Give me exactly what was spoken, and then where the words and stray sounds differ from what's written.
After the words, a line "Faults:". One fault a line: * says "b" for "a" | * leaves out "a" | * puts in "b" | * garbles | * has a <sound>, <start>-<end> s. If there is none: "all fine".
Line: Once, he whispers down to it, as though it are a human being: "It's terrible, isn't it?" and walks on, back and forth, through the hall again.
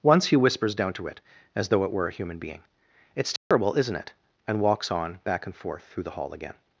Once, he whispers down to it, as though it were a human being: "It's terrible, isn't it?" and walks on, back and forth, through the hall again.
Faults:
* says "were" for "are"
* has a dropout, 3.4-3.5 s